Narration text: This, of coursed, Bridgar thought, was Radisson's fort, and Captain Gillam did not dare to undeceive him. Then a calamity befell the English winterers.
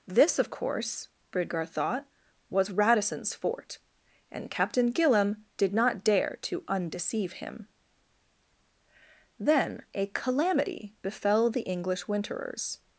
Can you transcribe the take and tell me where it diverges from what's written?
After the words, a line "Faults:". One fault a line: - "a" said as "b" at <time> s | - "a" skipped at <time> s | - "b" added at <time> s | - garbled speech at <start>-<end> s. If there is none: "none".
This, of course, Bridgar thought, was Radisson's fort, and Captain Gillam did not dare to undeceive him. Then a calamity befell the English winterers.
Faults:
- "coursed" said as "course" at 0.5 s